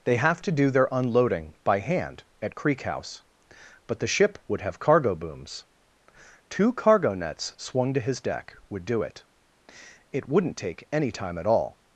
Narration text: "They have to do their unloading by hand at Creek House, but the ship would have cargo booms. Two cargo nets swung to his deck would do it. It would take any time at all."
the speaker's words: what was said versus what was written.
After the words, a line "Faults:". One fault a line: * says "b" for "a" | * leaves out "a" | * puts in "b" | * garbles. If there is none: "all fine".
"They have to do their unloading by hand at Creek House, but the ship would have cargo booms. Two cargo nets swung to his deck would do it. It wouldn't take any time at all."
Faults:
* says "wouldn't" for "would"